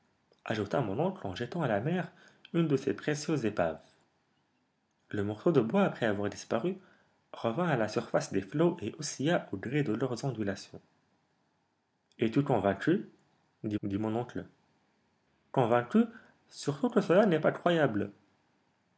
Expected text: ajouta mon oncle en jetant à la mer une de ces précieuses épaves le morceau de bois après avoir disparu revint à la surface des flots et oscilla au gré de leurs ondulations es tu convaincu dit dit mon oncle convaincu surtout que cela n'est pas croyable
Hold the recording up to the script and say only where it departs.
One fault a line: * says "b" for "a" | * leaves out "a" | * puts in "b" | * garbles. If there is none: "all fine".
all fine